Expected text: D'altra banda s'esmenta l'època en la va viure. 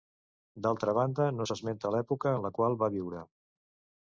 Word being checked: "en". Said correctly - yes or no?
yes